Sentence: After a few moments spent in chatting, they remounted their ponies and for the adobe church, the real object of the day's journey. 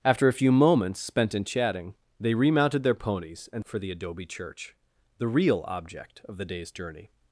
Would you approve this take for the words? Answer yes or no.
yes